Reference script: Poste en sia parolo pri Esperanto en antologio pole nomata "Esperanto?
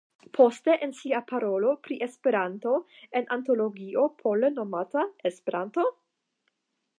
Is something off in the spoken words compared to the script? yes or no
no